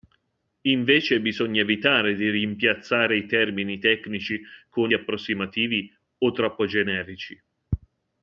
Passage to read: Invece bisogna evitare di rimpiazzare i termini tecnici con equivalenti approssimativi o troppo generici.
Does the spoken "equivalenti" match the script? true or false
false